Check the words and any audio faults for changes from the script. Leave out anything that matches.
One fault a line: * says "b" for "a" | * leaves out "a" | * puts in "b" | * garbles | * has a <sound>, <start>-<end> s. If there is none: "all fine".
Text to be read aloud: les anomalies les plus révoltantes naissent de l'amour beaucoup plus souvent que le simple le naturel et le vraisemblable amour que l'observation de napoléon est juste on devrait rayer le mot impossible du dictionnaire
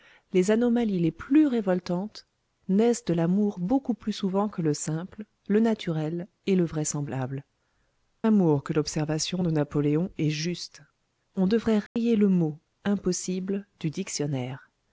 * has a dropout, 11.9-12.0 s